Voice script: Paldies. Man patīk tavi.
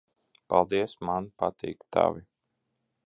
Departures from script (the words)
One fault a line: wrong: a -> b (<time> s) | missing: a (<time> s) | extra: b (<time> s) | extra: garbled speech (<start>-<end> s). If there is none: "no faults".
no faults